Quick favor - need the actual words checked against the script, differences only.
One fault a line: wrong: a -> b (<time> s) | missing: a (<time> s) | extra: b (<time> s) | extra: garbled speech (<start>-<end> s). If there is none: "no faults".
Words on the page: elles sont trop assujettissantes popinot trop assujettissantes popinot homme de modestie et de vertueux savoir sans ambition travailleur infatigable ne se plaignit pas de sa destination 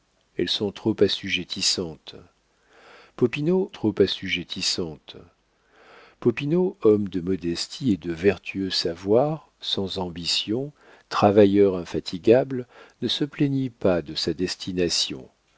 no faults